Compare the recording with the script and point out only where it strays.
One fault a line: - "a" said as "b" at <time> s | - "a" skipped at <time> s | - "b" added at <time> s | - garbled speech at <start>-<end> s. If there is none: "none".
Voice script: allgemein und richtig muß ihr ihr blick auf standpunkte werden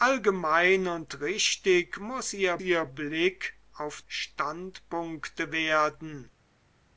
none